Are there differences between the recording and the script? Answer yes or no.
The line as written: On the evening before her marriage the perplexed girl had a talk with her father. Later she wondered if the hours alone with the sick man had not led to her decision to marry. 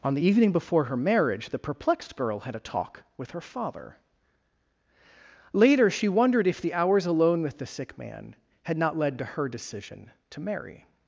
no